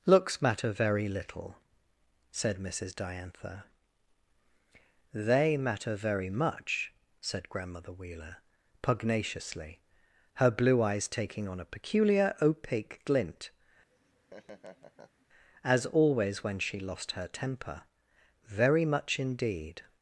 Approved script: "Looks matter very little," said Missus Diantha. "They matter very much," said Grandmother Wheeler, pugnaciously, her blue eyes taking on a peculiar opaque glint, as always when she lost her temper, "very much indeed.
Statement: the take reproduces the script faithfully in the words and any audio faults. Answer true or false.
false